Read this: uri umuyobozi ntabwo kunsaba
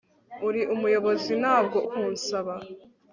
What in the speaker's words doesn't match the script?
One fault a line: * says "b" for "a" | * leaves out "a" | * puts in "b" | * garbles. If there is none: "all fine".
all fine